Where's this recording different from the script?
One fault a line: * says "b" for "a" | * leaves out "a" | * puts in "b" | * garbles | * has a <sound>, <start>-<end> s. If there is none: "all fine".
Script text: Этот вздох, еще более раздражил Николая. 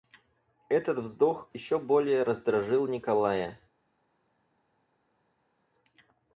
all fine